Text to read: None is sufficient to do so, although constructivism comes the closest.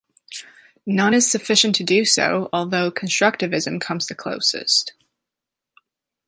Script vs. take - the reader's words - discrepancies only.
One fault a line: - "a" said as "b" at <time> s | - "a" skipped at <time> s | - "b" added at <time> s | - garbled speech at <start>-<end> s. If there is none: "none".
none